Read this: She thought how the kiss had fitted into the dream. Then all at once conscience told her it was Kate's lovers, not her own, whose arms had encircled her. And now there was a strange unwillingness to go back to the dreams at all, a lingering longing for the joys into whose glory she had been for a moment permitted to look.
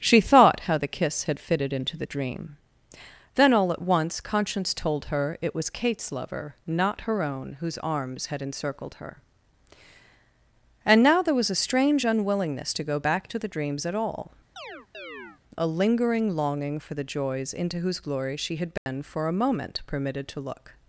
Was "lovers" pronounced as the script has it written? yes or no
no